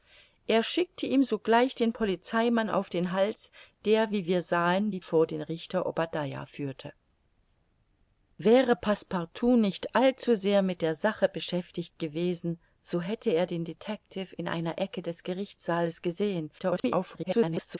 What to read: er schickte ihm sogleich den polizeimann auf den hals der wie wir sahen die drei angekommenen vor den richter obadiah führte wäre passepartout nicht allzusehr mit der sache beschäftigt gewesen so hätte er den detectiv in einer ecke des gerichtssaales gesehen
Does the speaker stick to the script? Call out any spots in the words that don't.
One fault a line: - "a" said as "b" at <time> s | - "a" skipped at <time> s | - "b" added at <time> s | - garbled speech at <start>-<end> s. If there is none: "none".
- "drei angekommenen" skipped at 5.0 s
- garbled speech at 16.6-17.8 s